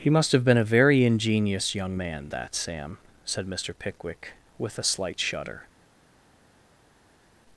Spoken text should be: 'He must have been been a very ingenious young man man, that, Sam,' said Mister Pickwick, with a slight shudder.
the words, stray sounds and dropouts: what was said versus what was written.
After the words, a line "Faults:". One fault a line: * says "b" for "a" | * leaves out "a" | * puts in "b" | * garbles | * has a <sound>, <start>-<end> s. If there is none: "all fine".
'He must have been a very ingenious young man, that, Sam,' said Mister Pickwick, with a slight shudder.
Faults:
* leaves out "been"
* leaves out "man"